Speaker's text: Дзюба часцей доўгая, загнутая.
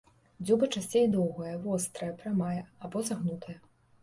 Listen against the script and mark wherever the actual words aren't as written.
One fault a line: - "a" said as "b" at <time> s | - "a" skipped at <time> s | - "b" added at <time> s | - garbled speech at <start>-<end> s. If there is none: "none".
- "вострая прамая або" added at 1.6 s